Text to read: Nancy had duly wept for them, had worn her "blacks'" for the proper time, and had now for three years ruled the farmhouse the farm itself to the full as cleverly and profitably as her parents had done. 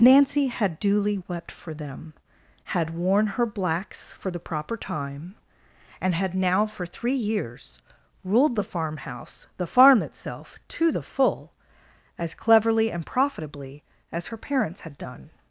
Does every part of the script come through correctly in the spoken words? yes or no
yes